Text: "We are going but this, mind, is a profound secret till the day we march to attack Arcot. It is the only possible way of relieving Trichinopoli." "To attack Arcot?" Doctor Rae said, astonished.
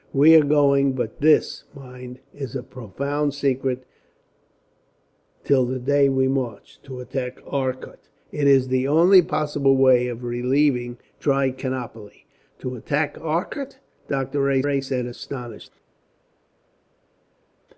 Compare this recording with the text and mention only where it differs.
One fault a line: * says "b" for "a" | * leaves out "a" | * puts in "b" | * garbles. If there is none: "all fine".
* puts in "Rae"